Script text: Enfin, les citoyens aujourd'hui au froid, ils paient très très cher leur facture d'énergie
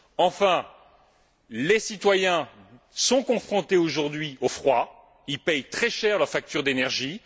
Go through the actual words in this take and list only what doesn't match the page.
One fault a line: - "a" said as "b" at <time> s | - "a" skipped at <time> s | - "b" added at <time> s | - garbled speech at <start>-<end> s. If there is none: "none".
- "sont confrontés" added at 2.9 s
- "très" skipped at 5.9 s